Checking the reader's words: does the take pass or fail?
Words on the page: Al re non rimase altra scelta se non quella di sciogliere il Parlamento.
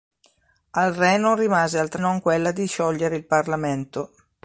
fail